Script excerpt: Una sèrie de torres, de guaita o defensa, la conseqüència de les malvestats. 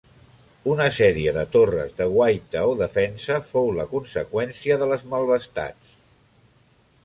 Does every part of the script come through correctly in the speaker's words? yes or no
no